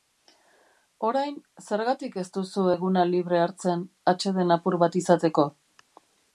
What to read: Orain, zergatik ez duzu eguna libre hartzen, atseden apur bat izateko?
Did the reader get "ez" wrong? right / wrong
right